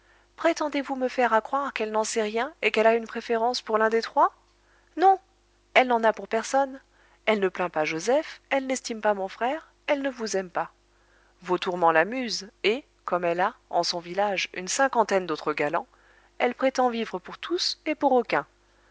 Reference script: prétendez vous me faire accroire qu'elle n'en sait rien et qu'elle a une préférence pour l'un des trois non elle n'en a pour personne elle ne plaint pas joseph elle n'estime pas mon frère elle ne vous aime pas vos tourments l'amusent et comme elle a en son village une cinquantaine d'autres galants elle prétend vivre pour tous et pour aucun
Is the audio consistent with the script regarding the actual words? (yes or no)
yes